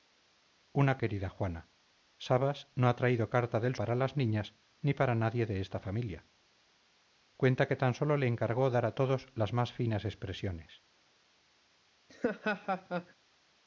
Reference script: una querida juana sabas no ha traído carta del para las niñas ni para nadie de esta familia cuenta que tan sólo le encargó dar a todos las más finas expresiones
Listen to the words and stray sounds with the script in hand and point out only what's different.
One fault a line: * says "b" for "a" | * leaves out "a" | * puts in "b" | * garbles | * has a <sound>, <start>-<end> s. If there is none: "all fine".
* has a laugh, 12.1-13.1 s